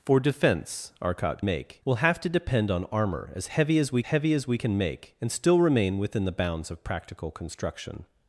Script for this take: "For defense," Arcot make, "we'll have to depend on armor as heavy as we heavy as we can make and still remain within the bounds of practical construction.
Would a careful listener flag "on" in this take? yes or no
no